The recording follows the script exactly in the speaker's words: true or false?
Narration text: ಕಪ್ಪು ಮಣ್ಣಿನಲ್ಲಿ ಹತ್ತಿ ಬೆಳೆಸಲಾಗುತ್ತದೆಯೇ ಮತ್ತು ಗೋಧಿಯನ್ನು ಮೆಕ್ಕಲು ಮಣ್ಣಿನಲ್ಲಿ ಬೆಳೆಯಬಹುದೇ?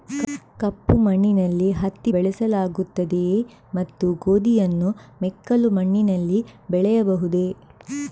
true